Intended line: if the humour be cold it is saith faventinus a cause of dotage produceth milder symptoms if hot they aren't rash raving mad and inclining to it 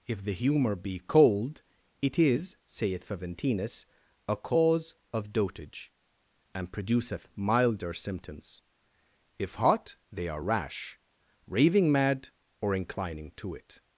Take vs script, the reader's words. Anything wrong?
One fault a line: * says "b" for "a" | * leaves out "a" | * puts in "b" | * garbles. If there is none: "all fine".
* puts in "and"
* says "are" for "aren't"
* says "or" for "and"